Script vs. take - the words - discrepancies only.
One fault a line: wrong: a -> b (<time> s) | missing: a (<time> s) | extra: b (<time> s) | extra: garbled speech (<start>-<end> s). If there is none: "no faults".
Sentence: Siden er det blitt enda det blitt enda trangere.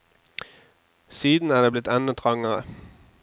missing: det blitt enda (2.1 s)